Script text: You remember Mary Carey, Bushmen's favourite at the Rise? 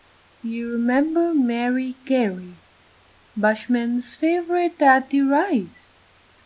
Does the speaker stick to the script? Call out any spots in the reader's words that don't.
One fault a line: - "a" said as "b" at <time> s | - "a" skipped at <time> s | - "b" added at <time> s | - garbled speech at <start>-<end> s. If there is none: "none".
none